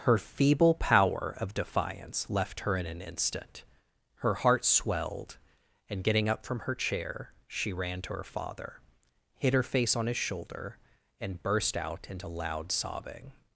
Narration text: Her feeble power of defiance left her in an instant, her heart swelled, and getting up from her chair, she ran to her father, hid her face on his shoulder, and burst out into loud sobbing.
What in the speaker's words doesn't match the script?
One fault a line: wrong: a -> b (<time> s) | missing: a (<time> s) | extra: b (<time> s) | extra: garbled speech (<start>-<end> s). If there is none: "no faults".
no faults